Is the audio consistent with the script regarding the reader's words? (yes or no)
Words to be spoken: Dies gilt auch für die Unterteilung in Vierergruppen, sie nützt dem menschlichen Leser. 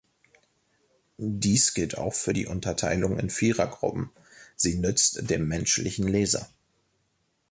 yes